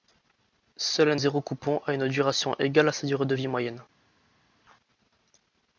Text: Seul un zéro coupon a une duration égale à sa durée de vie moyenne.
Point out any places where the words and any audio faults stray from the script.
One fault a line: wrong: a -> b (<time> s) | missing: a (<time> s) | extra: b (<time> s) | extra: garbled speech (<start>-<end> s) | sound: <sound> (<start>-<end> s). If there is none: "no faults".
no faults